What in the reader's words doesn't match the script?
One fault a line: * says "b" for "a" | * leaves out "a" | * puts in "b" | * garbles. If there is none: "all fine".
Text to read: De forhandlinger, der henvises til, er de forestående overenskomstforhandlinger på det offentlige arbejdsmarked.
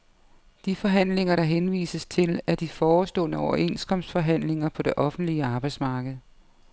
all fine